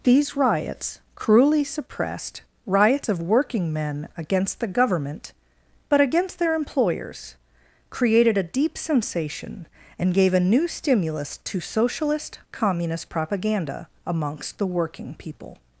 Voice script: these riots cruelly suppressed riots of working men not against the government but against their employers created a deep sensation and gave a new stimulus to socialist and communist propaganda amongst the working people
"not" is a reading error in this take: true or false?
true